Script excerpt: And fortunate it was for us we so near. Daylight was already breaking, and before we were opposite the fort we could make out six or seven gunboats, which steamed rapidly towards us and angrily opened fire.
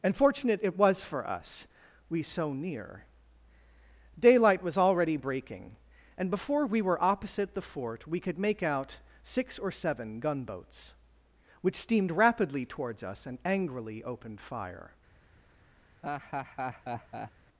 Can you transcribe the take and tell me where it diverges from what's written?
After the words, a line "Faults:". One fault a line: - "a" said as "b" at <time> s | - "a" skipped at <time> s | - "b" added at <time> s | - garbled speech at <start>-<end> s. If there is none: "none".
And fortunate it was for us we so near. Daylight was already breaking, and before we were opposite the fort we could make out six or seven gunboats, which steamed rapidly towards us and angrily opened fire.
Faults:
none